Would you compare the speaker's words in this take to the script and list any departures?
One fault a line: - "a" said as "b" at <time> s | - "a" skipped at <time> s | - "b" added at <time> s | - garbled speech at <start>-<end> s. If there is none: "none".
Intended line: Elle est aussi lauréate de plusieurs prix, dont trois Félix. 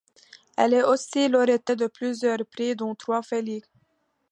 none